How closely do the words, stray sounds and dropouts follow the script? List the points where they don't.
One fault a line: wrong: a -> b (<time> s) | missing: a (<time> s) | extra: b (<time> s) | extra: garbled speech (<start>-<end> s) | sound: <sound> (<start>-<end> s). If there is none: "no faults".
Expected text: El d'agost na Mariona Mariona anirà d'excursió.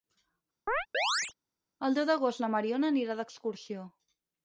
sound: chirp (0.7-1.3 s)
extra: deu (2.0 s)
missing: Mariona (2.9 s)